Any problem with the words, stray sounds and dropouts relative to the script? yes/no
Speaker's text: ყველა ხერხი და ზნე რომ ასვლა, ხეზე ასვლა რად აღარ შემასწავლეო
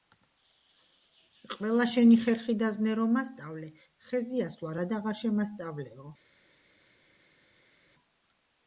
yes